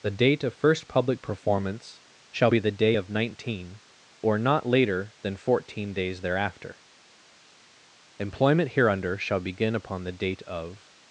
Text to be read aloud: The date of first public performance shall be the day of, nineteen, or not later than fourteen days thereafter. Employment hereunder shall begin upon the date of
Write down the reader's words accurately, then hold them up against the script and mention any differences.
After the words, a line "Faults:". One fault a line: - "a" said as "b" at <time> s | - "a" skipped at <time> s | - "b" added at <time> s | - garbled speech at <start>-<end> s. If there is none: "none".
The date of first public performance shall be the day of, nineteen, or not later than fourteen days thereafter. Employment hereunder shall begin upon the date of
Faults:
none